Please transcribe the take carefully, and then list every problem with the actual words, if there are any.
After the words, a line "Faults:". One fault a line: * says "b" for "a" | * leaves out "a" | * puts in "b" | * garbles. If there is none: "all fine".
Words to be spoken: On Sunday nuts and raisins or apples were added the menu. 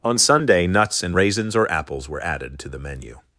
On Sunday nuts and raisins or apples were added to the menu.
Faults:
* puts in "to"